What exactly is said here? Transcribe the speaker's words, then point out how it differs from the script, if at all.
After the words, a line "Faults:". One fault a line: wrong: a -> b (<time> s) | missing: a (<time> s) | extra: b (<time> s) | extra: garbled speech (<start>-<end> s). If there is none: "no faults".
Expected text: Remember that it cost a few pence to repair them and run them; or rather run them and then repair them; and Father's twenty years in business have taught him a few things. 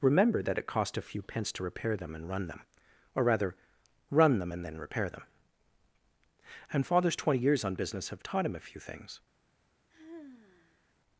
Remember that it cost a few pence to repair them and run them; or rather run them and then repair them; and Father's twenty years on business have taught him a few things.
Faults:
wrong: in -> on (7.6 s)